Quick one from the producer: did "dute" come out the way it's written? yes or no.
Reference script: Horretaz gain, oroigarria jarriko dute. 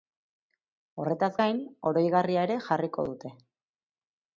yes